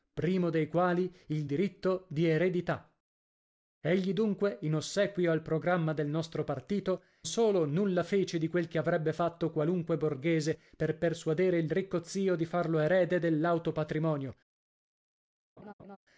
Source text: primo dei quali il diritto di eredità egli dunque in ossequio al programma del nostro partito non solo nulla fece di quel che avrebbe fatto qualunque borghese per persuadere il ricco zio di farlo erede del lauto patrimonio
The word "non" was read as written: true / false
false